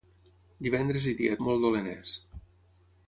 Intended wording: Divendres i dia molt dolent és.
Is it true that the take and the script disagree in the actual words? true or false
false